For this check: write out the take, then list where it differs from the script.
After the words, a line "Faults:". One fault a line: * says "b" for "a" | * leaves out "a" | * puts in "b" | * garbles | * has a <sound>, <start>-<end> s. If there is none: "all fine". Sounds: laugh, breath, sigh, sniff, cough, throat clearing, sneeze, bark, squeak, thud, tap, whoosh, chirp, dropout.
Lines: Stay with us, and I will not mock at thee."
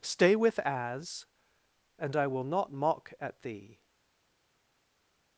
Stay with as, and I will not mock at thee."
Faults:
* says "as" for "us"